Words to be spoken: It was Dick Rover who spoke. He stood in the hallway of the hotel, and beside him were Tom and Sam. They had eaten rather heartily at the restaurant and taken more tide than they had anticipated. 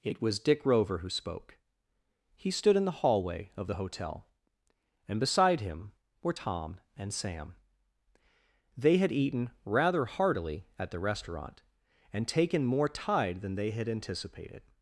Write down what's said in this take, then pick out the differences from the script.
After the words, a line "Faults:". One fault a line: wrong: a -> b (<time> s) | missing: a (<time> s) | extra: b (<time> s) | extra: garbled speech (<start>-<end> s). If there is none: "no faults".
It was Dick Rover who spoke. He stood in the hallway of the hotel, and beside him were Tom and Sam. They had eaten rather heartily at the restaurant and taken more tide than they had anticipated.
Faults:
no faults